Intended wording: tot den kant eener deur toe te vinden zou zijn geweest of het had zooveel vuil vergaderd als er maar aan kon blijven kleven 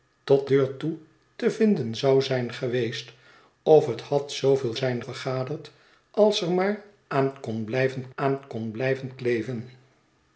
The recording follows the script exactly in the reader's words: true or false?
false